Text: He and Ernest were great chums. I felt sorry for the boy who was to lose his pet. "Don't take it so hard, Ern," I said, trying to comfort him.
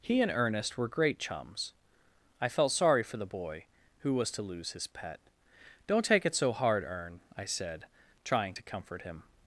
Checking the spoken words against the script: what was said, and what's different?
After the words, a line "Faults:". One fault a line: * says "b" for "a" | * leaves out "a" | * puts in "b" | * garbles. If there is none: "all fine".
He and Ernest were great chums. I felt sorry for the boy who was to lose his pet. "Don't take it so hard, Ern," I said, trying to comfort him.
Faults:
all fine